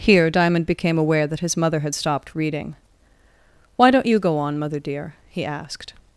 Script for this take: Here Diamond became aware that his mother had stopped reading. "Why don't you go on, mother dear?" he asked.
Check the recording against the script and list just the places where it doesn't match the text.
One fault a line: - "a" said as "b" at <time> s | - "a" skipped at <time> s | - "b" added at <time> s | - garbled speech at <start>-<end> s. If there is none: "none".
none